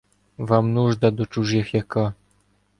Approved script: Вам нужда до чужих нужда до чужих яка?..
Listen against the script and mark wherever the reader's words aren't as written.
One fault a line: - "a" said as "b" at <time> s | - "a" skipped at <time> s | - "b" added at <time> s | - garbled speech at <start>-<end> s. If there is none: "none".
- "нужда до чужих" skipped at 1.7 s